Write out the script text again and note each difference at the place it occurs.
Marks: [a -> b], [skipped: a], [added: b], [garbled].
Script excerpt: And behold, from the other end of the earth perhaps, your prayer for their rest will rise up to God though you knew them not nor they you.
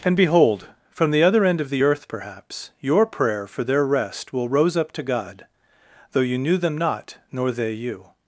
And behold, from the other end of the earth perhaps, your prayer for their rest will [rise -> rose] up to God though you knew them not nor they you.